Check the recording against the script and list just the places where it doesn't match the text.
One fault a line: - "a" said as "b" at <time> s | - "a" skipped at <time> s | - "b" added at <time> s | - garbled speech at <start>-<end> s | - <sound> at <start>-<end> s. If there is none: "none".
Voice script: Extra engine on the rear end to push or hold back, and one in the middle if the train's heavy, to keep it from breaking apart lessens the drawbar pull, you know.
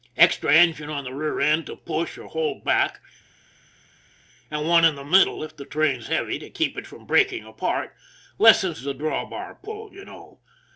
none